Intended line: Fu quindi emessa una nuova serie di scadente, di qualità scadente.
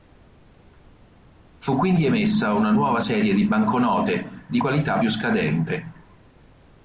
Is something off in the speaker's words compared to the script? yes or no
yes